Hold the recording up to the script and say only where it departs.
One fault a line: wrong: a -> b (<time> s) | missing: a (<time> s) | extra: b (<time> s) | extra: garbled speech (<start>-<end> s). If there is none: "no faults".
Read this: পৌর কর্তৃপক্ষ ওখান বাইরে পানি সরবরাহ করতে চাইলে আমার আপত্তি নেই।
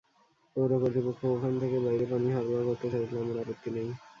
extra: থেকে (1.6 s)